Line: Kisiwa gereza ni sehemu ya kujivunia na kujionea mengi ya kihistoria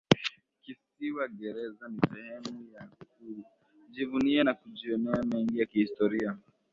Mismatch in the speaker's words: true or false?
false